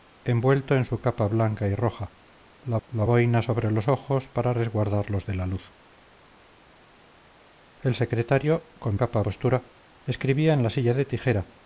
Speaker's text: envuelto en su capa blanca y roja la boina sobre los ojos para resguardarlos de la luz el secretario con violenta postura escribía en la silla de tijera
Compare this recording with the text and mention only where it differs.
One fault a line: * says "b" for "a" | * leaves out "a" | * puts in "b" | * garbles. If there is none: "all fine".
* puts in "la"
* says "capa" for "violenta"